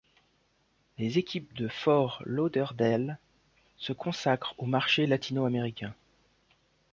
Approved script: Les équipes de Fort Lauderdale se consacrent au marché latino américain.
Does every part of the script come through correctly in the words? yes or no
yes